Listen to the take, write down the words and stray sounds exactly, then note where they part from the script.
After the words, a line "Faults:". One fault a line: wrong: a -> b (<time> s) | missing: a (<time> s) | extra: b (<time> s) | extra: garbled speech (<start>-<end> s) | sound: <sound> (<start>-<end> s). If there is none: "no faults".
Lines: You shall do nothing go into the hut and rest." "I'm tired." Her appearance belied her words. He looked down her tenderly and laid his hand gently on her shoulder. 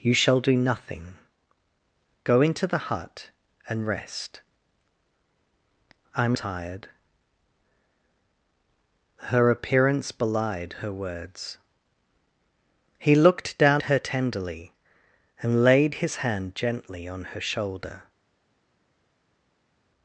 You shall do nothing go into the hut and rest." "I'm tired." Her appearance belied her words. He looked down her tenderly and laid his hand gently on her shoulder.
Faults:
no faults